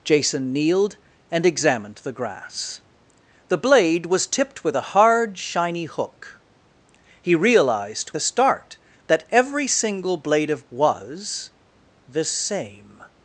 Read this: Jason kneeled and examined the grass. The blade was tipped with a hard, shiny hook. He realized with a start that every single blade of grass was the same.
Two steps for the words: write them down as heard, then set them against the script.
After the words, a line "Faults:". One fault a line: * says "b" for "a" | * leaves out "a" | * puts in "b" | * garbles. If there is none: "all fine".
Jason kneeled and examined the grass. The blade was tipped with a hard, shiny hook. He realized a start that every single blade of was the same.
Faults:
* leaves out "with"
* leaves out "grass"